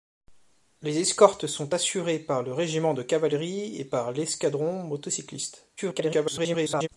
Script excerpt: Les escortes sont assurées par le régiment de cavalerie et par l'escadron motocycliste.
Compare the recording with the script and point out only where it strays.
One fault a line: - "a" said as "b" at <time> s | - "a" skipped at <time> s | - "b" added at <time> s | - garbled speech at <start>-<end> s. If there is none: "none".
- garbled speech at 5.8-6.9 s